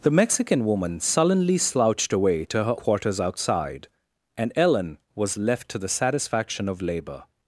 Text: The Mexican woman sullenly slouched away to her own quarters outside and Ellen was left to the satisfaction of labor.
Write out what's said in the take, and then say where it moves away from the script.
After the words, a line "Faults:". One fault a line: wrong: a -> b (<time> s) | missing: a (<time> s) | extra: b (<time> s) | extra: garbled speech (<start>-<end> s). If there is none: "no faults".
The Mexican woman sullenly slouched away to her quarters outside and Ellen was left to the satisfaction of labor.
Faults:
missing: own (2.8 s)